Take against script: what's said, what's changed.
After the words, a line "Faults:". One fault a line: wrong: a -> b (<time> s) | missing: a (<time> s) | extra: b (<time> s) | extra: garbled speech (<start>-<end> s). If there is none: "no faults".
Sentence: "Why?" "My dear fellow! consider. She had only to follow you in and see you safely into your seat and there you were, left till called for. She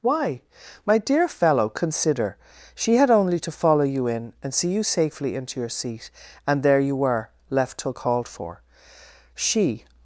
"Why?" "My dear fellow! consider. She had only to follow you in and see you safely into your seat and there you were, left till called for. She
Faults:
no faults